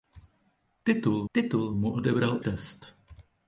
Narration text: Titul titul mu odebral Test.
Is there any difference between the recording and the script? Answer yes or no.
no